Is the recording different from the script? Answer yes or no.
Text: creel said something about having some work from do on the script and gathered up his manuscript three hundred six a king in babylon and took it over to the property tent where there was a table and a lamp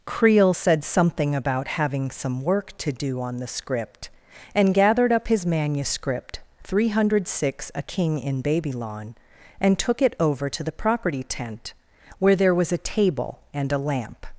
yes